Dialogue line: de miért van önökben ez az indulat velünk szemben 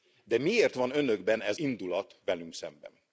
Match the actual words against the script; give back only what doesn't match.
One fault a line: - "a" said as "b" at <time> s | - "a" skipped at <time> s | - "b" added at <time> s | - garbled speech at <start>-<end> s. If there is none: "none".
- "az" skipped at 1.6 s